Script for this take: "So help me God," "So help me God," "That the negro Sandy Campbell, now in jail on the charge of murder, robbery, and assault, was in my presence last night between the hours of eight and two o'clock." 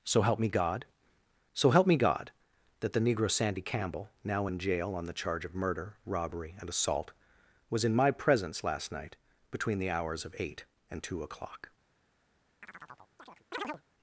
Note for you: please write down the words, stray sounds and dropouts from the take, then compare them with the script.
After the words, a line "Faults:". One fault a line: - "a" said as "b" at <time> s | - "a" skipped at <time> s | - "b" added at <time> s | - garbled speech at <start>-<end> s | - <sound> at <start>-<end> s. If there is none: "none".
"So help me God," "So help me God," "That the negro Sandy Campbell, now in jail on the charge of murder, robbery, and assault, was in my presence last night between the hours of eight and two o'clock."
Faults:
- chirp at 12.6-13.8 s